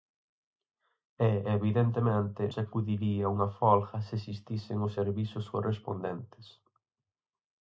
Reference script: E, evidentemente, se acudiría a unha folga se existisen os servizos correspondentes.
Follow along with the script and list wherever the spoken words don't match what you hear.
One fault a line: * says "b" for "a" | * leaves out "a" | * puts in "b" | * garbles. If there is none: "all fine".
all fine